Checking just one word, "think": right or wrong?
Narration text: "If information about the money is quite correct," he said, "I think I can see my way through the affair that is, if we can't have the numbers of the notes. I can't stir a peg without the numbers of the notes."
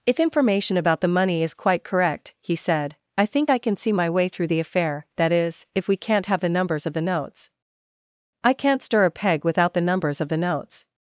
right